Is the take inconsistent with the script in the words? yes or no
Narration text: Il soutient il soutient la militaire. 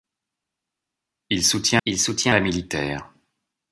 no